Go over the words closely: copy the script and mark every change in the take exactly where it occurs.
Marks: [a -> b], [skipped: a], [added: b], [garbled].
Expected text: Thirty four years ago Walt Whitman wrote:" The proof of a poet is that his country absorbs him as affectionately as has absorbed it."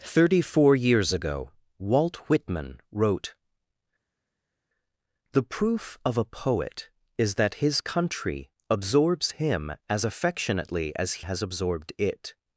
Thirty four years ago Walt Whitman wrote:" The proof of a poet is that his country absorbs him as affectionately as has absorbed it."